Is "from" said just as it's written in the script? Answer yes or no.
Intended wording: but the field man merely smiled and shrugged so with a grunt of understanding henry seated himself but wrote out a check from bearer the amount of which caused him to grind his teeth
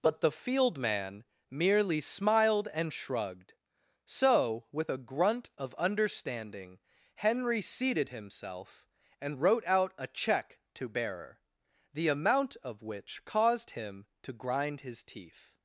no